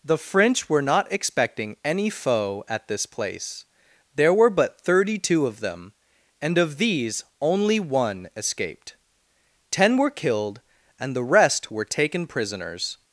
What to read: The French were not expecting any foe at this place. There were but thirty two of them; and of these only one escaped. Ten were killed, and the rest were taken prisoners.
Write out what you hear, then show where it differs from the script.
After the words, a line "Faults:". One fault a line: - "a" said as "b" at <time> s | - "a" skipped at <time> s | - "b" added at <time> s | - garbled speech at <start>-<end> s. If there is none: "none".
The French were not expecting any foe at this place. There were but thirty two of them; and of these only one escaped. Ten were killed, and the rest were taken prisoners.
Faults:
none